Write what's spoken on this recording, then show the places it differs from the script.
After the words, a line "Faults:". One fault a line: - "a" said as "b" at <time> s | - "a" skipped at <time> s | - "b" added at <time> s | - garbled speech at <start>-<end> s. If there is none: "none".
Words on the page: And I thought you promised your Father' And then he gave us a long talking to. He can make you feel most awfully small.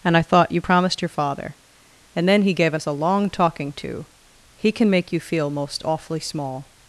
And I thought you promised your Father' And then he gave us a long talking to. He can make you feel most awfully small.
Faults:
none